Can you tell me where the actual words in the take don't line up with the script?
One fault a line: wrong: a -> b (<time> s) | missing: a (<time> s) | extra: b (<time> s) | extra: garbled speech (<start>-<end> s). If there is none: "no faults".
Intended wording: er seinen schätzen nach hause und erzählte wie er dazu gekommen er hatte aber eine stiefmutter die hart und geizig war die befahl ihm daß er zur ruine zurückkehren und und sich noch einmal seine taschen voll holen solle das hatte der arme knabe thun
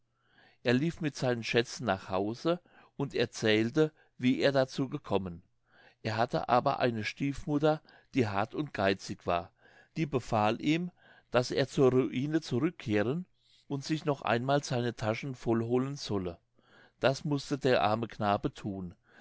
extra: lief mit (0.7 s)
missing: und (13.8 s)
wrong: hatte -> mußte (17.3 s)